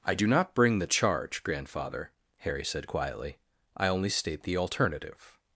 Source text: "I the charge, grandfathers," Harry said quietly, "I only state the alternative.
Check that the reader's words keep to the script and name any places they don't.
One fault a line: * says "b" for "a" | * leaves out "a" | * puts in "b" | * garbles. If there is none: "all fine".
* puts in "do not bring"
* says "grandfather" for "grandfathers"